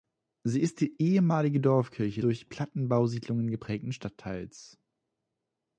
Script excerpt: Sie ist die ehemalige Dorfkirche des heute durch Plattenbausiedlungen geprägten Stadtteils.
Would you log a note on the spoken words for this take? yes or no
yes